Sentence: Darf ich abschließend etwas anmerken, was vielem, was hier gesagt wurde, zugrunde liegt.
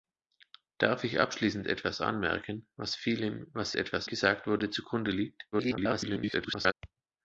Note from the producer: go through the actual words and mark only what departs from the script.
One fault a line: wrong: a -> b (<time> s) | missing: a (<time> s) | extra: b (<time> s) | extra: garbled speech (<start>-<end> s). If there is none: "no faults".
wrong: hier -> etwas (3.8 s)
extra: garbled speech (5.5-6.7 s)